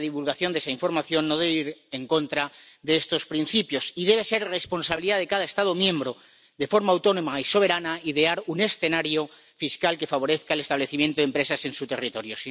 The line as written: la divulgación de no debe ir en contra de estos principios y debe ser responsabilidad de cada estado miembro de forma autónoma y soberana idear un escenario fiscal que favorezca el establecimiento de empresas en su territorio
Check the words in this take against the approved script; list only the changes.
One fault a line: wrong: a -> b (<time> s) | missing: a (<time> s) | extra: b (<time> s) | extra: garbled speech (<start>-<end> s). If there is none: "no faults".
extra: esa información (0.6 s)